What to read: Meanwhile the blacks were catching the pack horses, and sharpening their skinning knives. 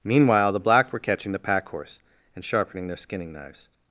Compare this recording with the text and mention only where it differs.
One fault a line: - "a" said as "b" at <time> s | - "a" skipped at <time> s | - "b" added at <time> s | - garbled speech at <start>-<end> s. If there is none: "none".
- "blacks" said as "black" at 0.6 s
- "horses" said as "horse" at 1.7 s